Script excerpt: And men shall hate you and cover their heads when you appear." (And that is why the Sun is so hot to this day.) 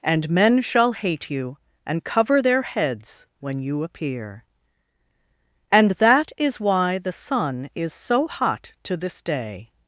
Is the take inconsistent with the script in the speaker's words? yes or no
no